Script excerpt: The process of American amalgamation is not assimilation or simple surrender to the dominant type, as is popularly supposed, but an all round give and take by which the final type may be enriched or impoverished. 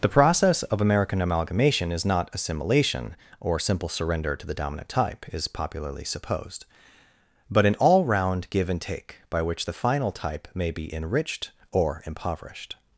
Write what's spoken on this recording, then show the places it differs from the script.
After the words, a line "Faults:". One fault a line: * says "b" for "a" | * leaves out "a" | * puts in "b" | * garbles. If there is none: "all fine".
The process of American amalgamation is not assimilation or simple surrender to the dominant type, is popularly supposed, but an all round give and take by which the final type may be enriched or impoverished.
Faults:
* leaves out "as"